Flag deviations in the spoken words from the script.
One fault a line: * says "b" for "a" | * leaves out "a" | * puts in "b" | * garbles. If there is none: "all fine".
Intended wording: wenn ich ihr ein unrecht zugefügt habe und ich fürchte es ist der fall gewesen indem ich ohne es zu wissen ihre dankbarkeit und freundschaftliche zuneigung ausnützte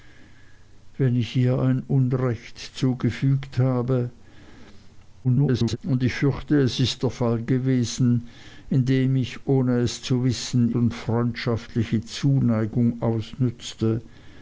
* garbles
* leaves out "ihre dankbarkeit"